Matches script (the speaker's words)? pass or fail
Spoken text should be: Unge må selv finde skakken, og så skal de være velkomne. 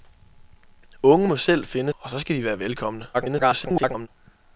fail